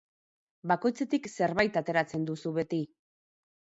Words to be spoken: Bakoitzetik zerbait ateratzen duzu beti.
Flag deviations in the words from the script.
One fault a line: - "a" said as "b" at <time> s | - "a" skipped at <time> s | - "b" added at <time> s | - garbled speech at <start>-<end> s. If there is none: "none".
none